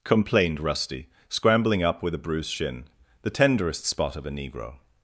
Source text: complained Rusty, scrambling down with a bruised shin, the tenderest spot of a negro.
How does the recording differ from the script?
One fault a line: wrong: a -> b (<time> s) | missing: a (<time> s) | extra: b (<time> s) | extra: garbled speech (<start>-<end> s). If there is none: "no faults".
wrong: down -> up (1.8 s)